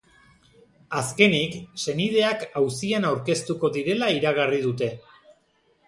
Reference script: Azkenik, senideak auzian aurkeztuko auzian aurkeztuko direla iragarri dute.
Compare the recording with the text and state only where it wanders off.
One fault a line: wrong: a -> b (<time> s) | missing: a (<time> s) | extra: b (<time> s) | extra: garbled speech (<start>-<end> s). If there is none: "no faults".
missing: auzian aurkeztuko (3.7 s)